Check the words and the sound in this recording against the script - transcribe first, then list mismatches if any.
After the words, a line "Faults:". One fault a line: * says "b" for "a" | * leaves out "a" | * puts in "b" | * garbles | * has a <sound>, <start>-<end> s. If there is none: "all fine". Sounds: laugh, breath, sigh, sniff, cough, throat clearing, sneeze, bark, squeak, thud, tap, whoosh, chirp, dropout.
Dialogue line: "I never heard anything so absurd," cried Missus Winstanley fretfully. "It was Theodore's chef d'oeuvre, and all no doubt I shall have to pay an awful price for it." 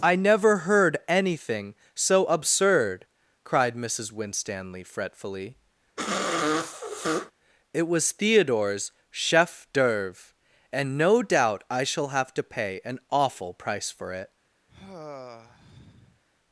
"I never heard anything so absurd," cried Missus Winstanley fretfully. "It was Theodore's chef d'oeuvre, and no doubt I shall have to pay an awful price for it."
Faults:
* has a sniff, 6.0-7.3 s
* leaves out "all"
* has a sigh, 14.7-16.2 s